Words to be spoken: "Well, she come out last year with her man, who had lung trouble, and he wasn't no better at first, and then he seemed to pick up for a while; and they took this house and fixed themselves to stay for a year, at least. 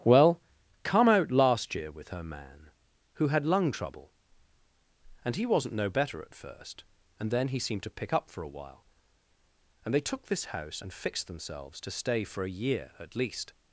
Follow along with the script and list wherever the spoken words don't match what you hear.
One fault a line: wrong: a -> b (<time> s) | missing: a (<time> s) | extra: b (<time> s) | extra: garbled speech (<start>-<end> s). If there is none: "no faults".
missing: she (0.4 s)